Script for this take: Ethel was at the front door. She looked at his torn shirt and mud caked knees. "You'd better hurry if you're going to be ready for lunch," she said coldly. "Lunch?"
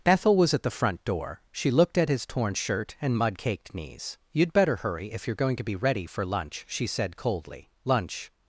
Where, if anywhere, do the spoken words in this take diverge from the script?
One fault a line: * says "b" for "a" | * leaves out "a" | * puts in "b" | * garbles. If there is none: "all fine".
all fine